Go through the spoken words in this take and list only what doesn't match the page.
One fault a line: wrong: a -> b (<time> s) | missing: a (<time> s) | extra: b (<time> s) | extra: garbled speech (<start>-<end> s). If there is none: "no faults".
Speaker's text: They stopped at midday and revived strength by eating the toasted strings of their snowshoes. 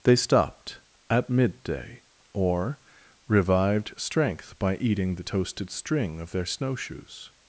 wrong: and -> or (2.3 s)
wrong: strings -> string (5.7 s)